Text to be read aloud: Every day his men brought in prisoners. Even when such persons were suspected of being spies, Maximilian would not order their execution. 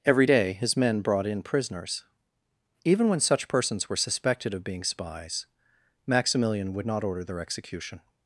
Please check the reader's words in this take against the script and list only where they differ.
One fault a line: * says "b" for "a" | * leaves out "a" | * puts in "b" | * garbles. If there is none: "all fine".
all fine